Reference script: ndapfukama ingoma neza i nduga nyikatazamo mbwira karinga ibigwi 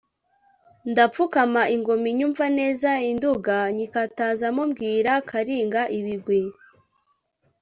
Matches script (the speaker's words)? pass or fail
fail